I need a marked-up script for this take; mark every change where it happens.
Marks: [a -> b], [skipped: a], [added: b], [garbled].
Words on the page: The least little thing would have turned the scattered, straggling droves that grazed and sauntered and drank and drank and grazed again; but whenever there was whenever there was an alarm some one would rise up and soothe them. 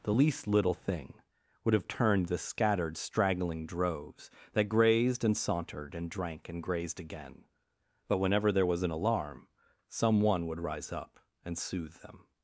The least little thing would have turned the scattered, straggling droves that grazed and sauntered and drank and [skipped: drank and] grazed again; but whenever there was [skipped: whenever there was] an alarm some one would rise up and soothe them.